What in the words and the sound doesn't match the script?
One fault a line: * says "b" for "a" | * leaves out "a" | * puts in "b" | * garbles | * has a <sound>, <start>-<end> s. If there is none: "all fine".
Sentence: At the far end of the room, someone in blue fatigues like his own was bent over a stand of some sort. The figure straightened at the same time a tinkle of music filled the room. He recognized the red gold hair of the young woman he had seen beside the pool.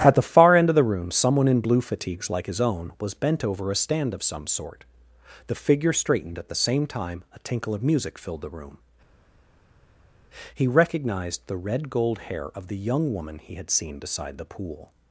all fine